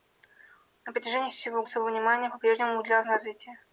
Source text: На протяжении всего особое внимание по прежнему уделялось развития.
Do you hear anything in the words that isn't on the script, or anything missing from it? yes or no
no